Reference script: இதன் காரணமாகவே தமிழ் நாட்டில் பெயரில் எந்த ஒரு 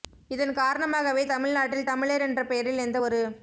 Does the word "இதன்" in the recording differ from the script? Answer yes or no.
no